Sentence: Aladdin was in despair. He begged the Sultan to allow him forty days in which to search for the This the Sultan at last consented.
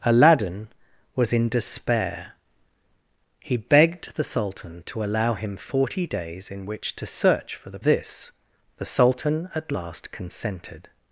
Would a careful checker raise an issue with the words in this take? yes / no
no